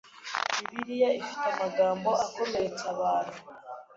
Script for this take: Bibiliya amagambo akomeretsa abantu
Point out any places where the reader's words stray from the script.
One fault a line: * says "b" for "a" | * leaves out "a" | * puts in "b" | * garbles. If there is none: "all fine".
* puts in "ifite"